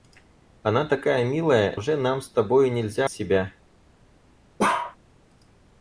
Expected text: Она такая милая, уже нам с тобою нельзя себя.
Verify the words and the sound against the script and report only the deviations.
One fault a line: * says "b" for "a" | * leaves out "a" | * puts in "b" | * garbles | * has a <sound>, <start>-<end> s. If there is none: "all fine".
* has a bark, 4.6-5.0 s